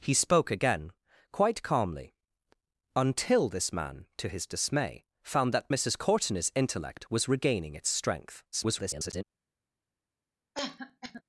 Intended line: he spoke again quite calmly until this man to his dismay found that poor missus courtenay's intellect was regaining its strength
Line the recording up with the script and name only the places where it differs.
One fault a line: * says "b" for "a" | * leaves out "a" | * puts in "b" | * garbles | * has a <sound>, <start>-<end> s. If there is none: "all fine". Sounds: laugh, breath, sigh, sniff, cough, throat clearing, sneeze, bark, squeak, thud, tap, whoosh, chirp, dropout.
* leaves out "poor"
* garbles
* has a cough, 10.5-11.2 s